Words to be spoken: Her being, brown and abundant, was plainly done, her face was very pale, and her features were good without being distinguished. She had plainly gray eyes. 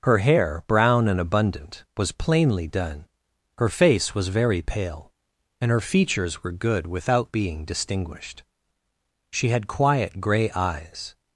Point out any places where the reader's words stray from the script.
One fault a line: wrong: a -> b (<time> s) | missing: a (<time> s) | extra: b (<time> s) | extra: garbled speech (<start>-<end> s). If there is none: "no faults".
wrong: being -> hair (0.2 s)
wrong: plainly -> quiet (9.7 s)